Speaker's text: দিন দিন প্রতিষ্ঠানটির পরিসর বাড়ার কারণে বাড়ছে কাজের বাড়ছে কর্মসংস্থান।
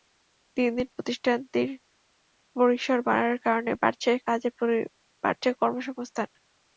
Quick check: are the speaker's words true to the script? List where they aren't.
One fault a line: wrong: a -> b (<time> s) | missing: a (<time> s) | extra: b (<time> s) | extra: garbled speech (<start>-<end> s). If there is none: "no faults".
no faults